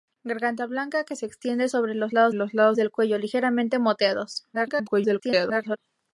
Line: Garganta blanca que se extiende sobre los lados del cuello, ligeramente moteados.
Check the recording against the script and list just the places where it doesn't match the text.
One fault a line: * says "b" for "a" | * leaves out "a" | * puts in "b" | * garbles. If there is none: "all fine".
* puts in "los lados"
* garbles